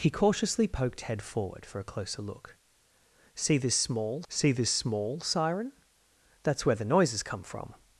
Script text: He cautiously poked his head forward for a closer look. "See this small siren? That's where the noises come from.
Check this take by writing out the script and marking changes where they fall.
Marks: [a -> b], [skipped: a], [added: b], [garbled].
He cautiously poked [skipped: his] head forward for a closer look. "See this small [added: see this small] siren? That's where the noises come from.